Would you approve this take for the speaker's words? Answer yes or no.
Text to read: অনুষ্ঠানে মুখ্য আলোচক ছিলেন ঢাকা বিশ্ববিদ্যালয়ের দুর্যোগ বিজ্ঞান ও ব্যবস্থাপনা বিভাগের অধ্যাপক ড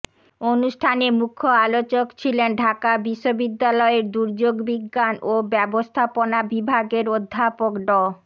yes